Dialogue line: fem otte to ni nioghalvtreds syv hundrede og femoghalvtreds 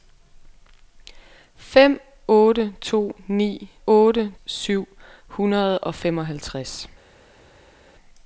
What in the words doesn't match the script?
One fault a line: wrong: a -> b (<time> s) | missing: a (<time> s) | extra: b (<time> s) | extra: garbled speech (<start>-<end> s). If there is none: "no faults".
wrong: nioghalvtreds -> otte (3.9 s)